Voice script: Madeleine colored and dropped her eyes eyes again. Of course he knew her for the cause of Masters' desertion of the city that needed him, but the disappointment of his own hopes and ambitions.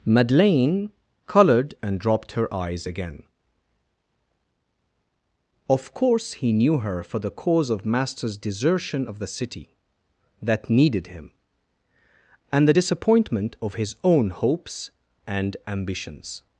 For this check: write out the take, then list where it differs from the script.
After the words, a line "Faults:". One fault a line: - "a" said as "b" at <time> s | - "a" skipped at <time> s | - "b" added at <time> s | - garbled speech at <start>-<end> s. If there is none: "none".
Madeleine colored and dropped her eyes again. Of course he knew her for the cause of Masters' desertion of the city that needed him, and the disappointment of his own hopes and ambitions.
Faults:
- "eyes" skipped at 2.9 s
- "but" said as "and" at 12.5 s